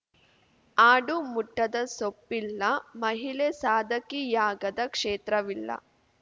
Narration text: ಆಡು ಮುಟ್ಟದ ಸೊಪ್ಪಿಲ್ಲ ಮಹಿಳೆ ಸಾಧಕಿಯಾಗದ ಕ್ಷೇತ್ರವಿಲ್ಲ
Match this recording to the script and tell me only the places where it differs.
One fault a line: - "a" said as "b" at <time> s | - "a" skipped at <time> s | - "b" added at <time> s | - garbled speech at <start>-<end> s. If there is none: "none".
none